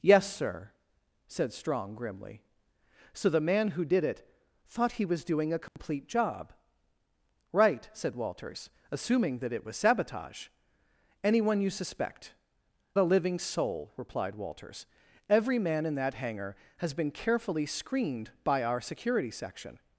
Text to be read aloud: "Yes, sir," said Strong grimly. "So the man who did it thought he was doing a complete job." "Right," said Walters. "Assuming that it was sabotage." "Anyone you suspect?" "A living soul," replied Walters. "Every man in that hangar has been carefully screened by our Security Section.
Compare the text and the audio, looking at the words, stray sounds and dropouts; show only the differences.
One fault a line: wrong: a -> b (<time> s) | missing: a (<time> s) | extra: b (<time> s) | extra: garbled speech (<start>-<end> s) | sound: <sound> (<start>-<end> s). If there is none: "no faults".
sound: dropout (5.7-5.8 s)